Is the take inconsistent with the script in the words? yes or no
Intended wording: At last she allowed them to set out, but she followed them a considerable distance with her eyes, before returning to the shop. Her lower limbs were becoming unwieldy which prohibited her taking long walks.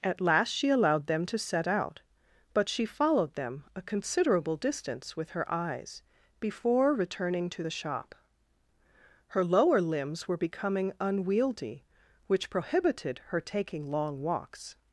no